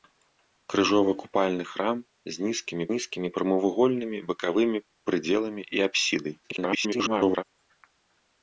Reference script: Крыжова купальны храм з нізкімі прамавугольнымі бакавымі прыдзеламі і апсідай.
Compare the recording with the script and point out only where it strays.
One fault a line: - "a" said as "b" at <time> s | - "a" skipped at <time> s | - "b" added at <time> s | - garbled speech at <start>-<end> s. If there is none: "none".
- "нізкімі" added at 2.9 s
- garbled speech at 6.4-7.4 s